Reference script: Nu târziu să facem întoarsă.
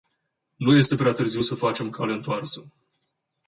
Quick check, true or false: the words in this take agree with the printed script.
false